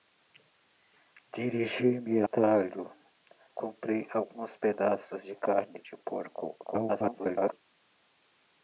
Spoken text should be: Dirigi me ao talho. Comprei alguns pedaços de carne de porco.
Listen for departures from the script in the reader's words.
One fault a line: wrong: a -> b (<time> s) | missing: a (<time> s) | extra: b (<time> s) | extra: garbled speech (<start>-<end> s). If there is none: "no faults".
missing: ao (2.2 s)
extra: garbled speech (6.6-7.5 s)